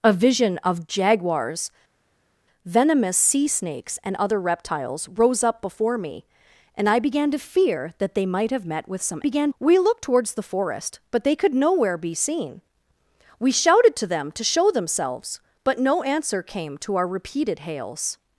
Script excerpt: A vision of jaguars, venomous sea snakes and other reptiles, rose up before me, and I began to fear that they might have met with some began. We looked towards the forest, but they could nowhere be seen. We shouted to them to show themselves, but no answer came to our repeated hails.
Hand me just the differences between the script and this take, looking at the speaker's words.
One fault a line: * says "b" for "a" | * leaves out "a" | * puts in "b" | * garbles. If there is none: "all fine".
all fine